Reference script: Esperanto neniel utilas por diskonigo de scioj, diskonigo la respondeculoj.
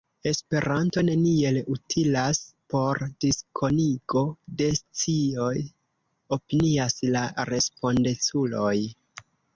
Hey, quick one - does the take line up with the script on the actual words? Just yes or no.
no